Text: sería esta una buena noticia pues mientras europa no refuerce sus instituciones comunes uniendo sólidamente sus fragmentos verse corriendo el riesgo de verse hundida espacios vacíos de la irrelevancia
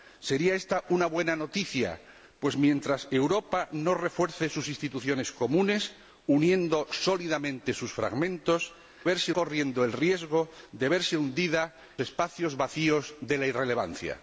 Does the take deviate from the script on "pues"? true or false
false